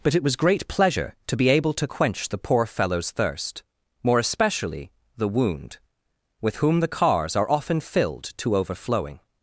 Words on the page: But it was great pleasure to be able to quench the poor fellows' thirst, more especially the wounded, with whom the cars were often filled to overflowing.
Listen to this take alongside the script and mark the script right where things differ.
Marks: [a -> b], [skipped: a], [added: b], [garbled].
But it was great pleasure to be able to quench the poor fellows' thirst, more especially the [wounded, -> wound] with whom the cars [were -> are] often filled to overflowing.